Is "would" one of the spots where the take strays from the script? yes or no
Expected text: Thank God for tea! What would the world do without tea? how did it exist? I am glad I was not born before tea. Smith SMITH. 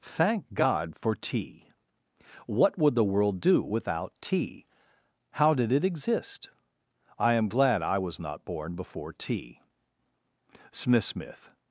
no